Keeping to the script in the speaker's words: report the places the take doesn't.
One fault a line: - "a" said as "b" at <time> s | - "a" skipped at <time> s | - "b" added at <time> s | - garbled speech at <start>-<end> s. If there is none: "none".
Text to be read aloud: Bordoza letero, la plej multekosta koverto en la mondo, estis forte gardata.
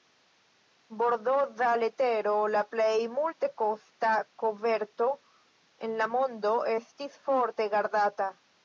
none